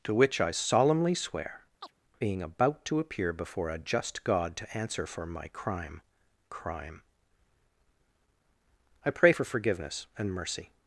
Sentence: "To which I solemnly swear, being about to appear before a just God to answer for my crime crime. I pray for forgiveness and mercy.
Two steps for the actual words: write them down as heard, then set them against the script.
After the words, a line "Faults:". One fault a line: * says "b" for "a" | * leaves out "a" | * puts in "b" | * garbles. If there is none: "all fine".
"To which I solemnly swear, being about to appear before a just God to answer for my crime crime. I pray for forgiveness and mercy.
Faults:
all fine